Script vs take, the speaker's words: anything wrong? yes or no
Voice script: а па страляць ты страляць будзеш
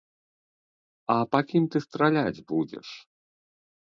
yes